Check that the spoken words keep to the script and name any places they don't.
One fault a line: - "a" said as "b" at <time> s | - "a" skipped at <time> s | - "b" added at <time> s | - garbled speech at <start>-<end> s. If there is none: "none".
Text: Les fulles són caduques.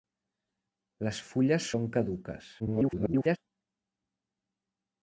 - garbled speech at 2.6-3.4 s